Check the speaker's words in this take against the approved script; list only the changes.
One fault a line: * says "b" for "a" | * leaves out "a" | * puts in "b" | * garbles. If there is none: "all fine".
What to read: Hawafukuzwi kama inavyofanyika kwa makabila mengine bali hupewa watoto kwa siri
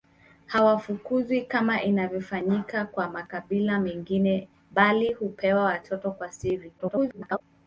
* garbles